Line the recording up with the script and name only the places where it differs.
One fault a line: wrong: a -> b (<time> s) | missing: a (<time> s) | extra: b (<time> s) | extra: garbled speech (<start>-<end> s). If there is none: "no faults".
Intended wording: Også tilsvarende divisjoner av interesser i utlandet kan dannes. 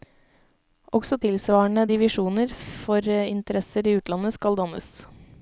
wrong: av -> for (2.8 s)
wrong: kan -> skal (4.4 s)